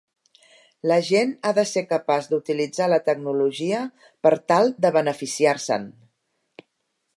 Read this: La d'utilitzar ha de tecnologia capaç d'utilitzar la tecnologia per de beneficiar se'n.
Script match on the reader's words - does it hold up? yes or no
no